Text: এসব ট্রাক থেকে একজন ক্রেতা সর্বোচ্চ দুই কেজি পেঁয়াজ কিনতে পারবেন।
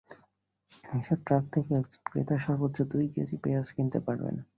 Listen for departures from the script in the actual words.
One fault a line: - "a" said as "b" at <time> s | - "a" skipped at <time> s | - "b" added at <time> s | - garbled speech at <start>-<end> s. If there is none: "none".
none